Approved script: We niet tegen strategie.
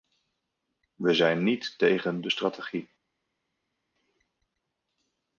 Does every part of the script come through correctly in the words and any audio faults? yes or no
no